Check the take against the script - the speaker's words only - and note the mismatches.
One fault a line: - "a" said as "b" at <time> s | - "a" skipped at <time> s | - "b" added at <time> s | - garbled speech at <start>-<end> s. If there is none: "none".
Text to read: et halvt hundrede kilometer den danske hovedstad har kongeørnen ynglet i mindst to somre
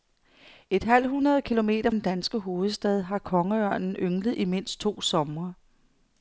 none